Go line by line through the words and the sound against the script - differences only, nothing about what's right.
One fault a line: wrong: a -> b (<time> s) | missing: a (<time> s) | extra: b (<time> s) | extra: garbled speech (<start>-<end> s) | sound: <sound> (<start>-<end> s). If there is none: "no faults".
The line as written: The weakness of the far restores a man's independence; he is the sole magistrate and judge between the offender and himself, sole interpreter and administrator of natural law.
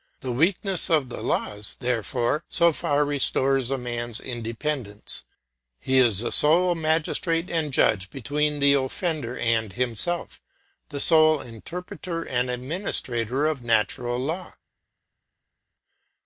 extra: laws therefore so (1.2 s)
extra: the (10.9 s)